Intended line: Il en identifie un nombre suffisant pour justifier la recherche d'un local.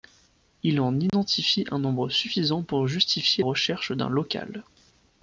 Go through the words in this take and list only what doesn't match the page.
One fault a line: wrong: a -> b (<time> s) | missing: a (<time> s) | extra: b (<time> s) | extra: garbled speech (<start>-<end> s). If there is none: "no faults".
missing: la (3.4 s)